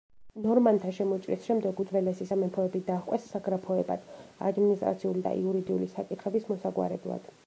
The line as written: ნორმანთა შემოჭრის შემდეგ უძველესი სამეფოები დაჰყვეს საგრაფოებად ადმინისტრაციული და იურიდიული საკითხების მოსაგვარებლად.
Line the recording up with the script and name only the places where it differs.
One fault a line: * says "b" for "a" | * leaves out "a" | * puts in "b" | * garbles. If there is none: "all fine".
all fine